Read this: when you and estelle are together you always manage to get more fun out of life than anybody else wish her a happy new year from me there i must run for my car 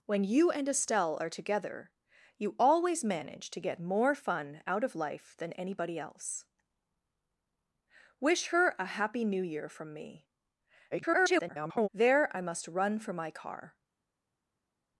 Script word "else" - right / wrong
right